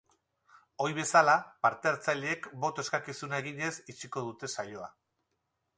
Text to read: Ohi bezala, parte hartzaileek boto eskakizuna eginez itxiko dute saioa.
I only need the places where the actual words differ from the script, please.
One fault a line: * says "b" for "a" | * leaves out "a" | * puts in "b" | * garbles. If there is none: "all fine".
all fine